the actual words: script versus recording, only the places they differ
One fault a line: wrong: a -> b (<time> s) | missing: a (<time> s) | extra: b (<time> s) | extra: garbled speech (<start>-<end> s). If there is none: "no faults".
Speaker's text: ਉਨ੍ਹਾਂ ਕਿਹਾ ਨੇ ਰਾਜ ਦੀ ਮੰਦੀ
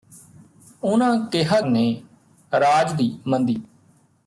no faults